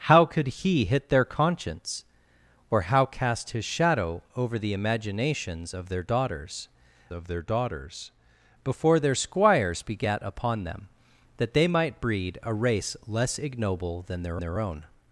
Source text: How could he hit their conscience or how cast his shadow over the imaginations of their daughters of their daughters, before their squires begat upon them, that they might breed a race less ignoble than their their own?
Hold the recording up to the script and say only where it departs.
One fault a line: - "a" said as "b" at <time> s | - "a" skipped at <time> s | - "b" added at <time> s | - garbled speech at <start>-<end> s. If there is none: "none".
none